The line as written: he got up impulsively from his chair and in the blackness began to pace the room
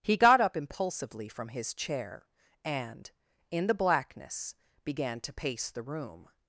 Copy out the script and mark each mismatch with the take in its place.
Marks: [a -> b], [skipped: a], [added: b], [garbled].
he got up impulsively from his chair and in the blackness began to pace the room